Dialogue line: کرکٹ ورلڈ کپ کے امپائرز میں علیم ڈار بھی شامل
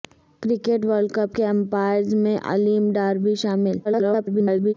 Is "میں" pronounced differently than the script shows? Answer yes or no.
no